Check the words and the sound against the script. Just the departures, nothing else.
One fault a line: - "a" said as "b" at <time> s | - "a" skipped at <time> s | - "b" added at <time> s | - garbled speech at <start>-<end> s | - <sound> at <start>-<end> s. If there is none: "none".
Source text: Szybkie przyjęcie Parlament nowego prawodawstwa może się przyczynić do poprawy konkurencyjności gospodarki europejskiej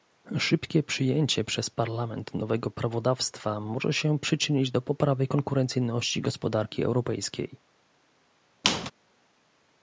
- "przez" added at 1.4 s
- squeak at 8.6-8.9 s